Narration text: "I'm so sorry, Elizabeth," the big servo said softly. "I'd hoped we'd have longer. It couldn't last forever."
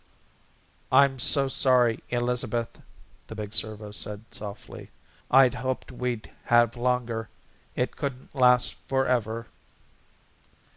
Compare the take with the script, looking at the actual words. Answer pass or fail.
pass